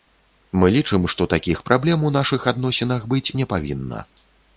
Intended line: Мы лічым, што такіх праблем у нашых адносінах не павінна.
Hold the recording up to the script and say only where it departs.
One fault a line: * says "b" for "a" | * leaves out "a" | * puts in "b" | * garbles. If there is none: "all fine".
* puts in "быць"